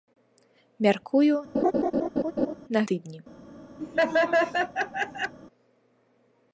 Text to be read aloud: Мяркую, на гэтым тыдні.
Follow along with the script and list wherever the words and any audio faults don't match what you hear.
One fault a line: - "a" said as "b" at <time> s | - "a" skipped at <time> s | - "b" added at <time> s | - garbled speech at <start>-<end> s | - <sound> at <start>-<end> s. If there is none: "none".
- laugh at 1.5-2.5 s
- "гэтым" skipped at 2.8 s
- laugh at 3.8-5.3 s